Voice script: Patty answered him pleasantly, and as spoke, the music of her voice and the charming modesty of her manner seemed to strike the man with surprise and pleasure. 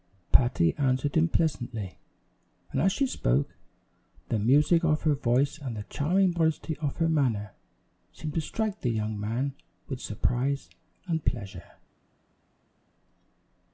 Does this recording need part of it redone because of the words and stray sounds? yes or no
yes